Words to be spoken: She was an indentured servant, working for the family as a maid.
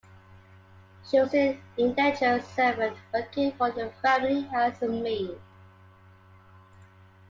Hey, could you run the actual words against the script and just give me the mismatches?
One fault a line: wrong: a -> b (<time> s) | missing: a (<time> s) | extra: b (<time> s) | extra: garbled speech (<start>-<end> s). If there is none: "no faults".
no faults